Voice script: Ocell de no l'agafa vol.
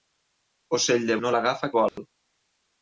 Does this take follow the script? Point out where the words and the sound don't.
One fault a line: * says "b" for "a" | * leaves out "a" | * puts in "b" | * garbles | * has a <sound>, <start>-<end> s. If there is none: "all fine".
* has a dropout, 1.9-2.0 s